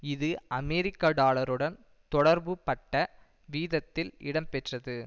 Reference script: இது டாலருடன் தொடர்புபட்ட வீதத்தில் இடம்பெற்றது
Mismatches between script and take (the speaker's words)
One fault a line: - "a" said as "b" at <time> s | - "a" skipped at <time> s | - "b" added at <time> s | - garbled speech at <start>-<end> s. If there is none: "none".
- "அமெரிக்க" added at 0.6 s